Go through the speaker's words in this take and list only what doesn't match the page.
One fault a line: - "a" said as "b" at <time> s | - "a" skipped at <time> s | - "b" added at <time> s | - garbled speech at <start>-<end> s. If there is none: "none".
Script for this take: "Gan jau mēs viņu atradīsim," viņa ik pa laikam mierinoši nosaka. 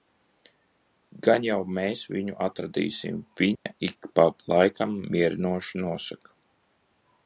none